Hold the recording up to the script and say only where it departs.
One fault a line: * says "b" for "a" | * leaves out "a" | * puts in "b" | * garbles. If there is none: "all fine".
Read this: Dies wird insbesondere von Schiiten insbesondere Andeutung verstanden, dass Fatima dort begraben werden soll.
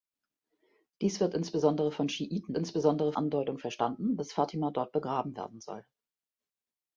all fine